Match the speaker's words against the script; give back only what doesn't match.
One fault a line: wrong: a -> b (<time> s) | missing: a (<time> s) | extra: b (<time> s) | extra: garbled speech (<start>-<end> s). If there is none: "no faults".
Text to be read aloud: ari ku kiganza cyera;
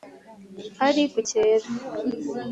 missing: kiganza (1.2 s)